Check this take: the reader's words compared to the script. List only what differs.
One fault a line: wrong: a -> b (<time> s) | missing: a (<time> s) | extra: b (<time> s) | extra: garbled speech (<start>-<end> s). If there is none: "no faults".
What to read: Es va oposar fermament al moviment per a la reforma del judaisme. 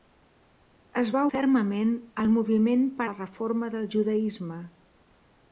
missing: oposar (1.2 s)
missing: a (3.1 s)